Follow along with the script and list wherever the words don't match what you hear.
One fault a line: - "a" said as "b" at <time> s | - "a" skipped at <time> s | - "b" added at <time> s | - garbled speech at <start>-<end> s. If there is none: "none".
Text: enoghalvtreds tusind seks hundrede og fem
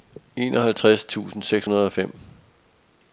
none